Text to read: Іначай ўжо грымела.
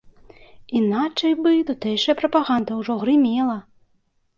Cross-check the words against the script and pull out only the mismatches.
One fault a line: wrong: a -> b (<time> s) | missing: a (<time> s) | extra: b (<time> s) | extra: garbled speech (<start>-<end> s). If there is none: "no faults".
extra: бы тутэйшая прапаганда (1.4 s)